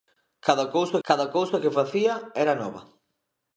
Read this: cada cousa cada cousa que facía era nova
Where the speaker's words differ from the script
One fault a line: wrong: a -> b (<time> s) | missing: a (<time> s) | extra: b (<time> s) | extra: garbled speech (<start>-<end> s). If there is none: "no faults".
no faults